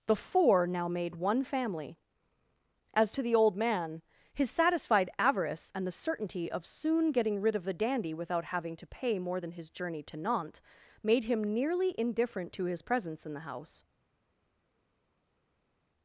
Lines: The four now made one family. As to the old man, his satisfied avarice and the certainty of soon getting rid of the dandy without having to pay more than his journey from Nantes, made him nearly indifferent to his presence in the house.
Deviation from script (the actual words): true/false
true